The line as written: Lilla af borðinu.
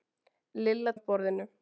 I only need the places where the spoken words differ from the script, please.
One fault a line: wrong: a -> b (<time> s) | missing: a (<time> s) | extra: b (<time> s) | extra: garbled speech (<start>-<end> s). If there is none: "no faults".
no faults